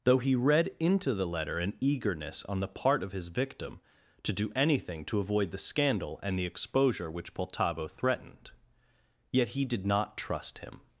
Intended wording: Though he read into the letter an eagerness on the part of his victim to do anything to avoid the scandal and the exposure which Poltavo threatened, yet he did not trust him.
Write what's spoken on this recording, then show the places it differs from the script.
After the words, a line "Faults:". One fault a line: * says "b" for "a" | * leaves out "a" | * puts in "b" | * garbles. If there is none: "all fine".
Though he read into the letter an eagerness on the part of his victim to do anything to avoid the scandal and the exposure which Poltavo threatened, yet he did not trust him.
Faults:
all fine